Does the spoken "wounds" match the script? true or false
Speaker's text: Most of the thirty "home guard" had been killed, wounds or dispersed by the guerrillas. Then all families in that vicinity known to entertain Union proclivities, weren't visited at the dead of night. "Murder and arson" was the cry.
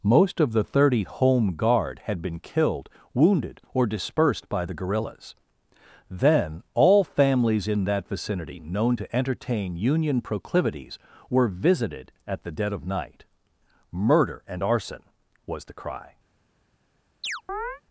false